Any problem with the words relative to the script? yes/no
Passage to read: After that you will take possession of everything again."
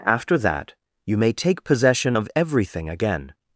yes